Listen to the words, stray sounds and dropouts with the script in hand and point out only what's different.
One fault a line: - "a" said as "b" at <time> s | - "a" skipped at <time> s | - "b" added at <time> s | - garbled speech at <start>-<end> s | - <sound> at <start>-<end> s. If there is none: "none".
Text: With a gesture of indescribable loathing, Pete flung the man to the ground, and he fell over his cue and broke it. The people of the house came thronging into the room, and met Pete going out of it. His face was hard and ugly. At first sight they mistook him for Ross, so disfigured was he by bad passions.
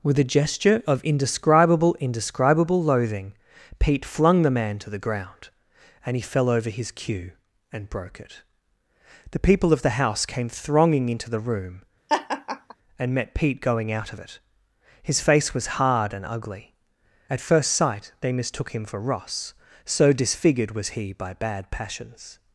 - "indescribable" added at 2.0 s
- laugh at 12.1-12.8 s